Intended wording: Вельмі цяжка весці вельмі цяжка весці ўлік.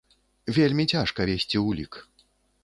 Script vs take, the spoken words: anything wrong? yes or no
yes